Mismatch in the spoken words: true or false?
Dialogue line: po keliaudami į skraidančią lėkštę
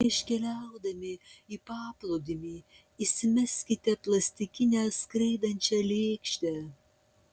true